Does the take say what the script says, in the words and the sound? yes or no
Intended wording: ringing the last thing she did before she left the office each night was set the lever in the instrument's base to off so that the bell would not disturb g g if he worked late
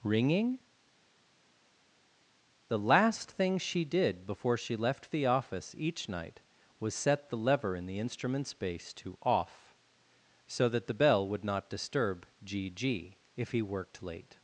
yes